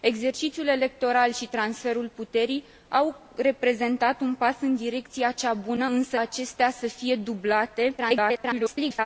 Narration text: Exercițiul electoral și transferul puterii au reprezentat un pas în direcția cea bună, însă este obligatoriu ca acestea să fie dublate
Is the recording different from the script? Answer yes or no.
yes